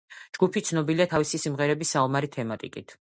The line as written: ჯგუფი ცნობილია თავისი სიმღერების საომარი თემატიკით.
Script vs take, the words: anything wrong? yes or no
no